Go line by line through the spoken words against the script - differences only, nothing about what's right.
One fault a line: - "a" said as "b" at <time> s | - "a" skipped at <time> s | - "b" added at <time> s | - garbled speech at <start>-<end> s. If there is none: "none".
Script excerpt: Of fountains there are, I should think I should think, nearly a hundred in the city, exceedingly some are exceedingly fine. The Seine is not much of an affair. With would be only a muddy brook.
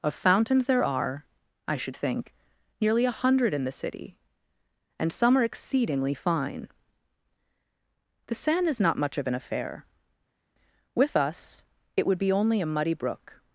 - "I should think" skipped at 2.3 s
- "exceedingly" said as "and" at 5.0 s
- "us it" added at 11.2 s